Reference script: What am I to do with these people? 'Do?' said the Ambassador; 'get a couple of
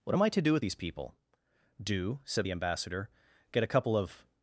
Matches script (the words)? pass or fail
pass